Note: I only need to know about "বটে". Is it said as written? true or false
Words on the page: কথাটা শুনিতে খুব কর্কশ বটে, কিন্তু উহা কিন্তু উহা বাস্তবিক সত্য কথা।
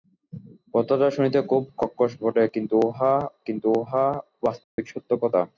true